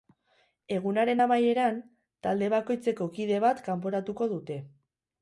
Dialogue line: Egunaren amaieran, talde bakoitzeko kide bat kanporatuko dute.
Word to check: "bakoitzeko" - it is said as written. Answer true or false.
true